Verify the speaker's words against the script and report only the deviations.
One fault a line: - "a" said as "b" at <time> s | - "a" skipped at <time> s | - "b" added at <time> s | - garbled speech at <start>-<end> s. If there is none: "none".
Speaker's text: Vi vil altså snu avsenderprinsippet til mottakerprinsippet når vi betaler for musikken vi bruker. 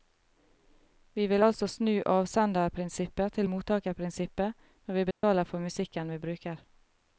none